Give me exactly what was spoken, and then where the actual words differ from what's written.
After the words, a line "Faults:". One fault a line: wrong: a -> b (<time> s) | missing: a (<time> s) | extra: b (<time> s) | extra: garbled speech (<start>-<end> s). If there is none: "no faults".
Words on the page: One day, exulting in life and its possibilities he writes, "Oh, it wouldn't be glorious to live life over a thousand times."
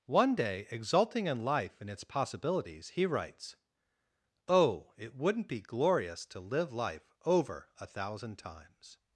One day, exulting in life and its possibilities he writes, "Oh, it wouldn't be glorious to live life over a thousand times."
Faults:
no faults